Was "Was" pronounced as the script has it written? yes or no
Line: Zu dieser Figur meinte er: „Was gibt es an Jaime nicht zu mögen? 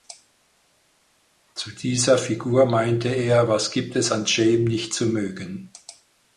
yes